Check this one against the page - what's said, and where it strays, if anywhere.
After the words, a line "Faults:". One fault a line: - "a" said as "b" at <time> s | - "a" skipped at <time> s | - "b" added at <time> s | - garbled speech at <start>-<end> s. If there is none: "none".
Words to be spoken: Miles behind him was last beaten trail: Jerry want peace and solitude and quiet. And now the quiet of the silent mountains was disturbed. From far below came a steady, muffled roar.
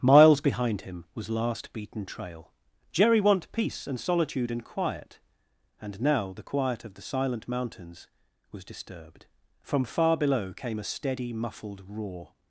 Miles behind him was last beaten trail: Jerry want peace and solitude and quiet. And now the quiet of the silent mountains was disturbed. From far below came a steady, muffled roar.
Faults:
none